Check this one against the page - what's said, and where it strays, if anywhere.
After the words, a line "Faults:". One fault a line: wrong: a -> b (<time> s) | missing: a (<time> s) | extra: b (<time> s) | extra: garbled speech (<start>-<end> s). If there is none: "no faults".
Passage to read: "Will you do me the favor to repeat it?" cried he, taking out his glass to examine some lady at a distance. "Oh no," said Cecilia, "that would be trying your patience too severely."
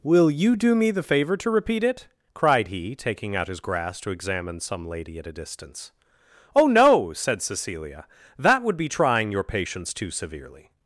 "Will you do me the favor to repeat it?" cried he, taking out his grass to examine some lady at a distance. "Oh no," said Cecilia, "that would be trying your patience too severely."
Faults:
wrong: glass -> grass (3.6 s)